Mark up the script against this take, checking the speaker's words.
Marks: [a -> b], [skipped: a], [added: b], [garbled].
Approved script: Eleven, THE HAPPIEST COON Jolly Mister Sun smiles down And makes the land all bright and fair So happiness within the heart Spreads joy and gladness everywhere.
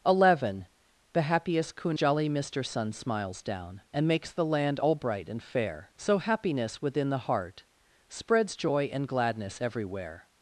Eleven, THE HAPPIEST COON Jolly Mister Sun smiles down And makes the land all bright and fair So happiness within the heart Spreads joy and gladness everywhere.